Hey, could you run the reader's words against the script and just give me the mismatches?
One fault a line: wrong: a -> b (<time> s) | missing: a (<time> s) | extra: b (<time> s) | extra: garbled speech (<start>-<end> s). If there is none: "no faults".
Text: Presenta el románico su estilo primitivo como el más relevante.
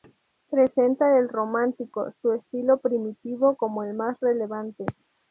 no faults